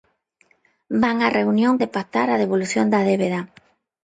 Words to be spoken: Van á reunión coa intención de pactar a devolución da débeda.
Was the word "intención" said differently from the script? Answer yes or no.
yes